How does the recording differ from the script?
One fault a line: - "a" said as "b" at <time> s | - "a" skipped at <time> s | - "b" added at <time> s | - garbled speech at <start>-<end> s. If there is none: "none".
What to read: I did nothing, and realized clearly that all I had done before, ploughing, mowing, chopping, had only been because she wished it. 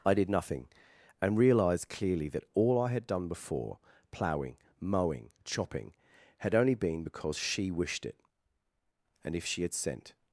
- "And if she had sent" added at 9.2 s